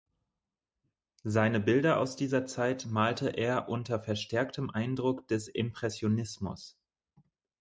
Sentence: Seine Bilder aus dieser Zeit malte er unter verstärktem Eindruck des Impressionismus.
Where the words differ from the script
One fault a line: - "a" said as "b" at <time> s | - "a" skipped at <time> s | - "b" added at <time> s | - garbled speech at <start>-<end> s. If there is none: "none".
none